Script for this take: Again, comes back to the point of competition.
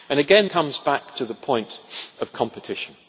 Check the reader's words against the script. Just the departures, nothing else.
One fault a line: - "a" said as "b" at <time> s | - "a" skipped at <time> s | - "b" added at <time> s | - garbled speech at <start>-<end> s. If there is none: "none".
none